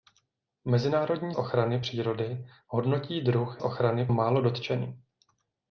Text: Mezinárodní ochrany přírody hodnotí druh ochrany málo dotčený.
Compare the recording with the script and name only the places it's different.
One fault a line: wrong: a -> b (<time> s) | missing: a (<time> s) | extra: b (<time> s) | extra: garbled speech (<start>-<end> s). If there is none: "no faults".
no faults